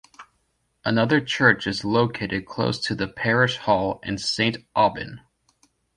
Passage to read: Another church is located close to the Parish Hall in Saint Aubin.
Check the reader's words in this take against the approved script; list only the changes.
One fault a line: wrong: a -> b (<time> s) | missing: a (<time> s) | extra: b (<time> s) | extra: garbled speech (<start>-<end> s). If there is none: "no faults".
no faults